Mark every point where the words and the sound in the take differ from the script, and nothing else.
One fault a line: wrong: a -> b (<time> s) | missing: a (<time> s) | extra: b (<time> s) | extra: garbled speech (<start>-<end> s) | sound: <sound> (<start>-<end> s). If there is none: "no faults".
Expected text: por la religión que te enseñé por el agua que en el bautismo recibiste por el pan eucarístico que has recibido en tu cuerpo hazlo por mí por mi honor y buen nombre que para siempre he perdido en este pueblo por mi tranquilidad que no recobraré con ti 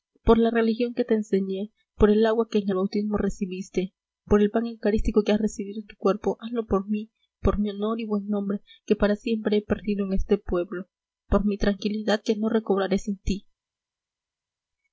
wrong: con -> sin (13.0 s)